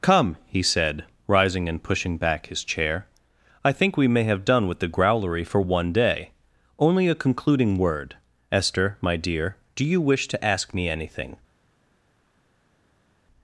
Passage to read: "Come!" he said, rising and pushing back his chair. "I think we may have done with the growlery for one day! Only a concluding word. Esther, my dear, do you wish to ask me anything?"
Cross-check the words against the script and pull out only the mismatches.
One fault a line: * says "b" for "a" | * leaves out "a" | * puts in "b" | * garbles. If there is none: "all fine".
all fine